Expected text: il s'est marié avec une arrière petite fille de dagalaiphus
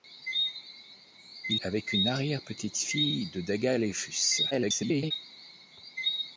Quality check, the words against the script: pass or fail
fail